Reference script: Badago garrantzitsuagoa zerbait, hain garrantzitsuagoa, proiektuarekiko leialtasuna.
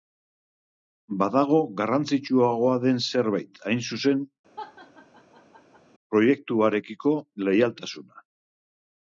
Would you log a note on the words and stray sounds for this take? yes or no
yes